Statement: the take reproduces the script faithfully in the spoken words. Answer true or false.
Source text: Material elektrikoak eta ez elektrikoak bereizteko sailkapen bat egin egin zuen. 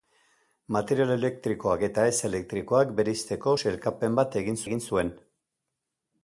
true